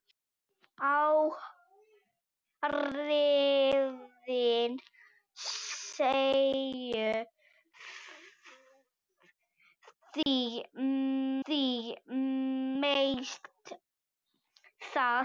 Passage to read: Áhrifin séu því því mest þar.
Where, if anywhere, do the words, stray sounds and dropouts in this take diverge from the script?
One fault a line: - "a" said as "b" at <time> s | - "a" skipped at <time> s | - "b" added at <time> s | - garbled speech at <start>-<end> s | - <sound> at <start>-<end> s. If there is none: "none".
- dropout at 10.2-10.3 s